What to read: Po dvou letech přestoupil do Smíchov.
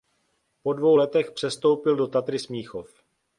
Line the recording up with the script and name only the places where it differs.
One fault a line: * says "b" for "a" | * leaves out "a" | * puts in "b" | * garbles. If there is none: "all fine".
* puts in "Tatry"